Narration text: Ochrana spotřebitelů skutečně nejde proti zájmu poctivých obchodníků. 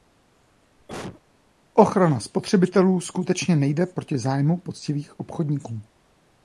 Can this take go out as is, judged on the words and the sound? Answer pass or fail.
fail